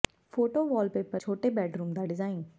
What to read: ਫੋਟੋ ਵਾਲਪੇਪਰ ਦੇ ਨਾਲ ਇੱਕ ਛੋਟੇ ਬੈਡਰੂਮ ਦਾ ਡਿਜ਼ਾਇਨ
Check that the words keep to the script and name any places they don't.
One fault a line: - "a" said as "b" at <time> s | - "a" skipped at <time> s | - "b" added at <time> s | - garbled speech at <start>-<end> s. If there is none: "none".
- "ਦੇ ਨਾਲ ਇੱਕ" skipped at 1.2 s